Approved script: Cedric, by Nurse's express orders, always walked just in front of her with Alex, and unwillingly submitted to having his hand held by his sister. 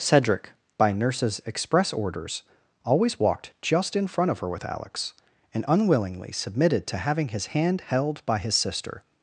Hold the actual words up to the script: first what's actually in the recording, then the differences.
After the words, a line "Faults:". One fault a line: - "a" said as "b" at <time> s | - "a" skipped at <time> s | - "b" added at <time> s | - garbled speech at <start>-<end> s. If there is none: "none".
Cedric, by Nurse's express orders, always walked just in front of her with Alex, and unwillingly submitted to having his hand held by his sister.
Faults:
none